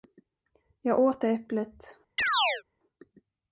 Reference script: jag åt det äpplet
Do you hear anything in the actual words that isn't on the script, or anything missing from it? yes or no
no